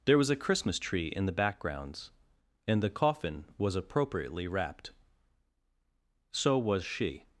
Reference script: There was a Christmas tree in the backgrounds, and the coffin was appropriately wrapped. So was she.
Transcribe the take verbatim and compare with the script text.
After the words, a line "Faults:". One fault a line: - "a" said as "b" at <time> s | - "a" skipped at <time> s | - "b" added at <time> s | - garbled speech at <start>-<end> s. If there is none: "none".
There was a Christmas tree in the backgrounds, and the coffin was appropriately wrapped. So was she.
Faults:
none